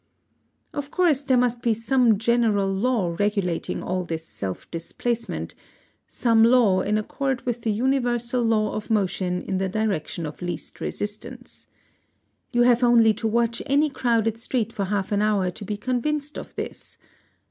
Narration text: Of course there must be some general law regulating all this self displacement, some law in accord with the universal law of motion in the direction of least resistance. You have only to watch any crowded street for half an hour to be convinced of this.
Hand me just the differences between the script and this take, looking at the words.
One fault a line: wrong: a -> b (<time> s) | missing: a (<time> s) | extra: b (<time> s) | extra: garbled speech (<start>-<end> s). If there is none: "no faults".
no faults